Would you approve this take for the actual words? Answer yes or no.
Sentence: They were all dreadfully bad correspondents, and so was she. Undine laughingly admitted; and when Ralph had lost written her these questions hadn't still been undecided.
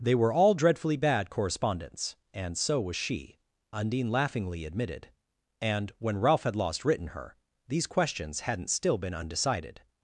yes